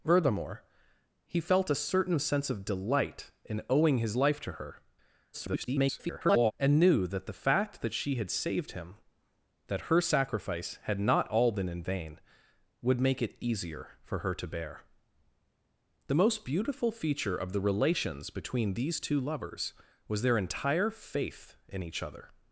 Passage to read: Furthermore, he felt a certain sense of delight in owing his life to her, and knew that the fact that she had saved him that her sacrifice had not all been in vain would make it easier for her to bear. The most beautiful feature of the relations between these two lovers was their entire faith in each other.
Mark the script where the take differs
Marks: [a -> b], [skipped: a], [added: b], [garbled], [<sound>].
Furthermore, he felt a certain sense of delight in owing his life to her, [garbled] and knew that the fact that she had saved him that her sacrifice had not all been in vain would make it easier for her to bear. The most beautiful feature of the relations between these two lovers was their entire faith in each other.